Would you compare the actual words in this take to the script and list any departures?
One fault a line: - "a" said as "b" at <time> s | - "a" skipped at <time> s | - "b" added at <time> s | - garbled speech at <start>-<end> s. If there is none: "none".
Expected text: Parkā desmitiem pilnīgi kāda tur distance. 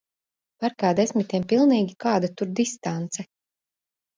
none